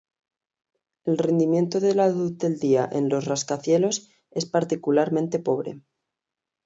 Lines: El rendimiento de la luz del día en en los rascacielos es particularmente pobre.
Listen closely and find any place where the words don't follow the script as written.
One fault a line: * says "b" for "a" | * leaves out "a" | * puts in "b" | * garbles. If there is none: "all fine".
* leaves out "en"